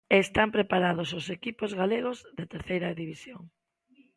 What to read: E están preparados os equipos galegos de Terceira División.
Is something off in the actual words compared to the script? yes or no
no